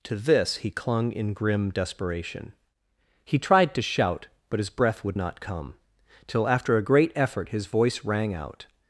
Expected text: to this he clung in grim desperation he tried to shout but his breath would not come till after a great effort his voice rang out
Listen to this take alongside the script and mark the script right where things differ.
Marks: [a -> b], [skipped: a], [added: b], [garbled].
to this he clung in grim desperation he tried to shout but his breath would not come till after a great effort his voice rang out